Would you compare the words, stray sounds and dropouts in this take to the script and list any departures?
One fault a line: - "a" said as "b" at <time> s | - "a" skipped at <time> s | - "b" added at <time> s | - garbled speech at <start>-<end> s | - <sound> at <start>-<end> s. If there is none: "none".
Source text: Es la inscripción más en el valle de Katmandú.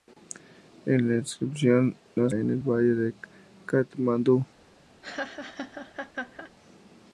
- laugh at 5.0-6.5 s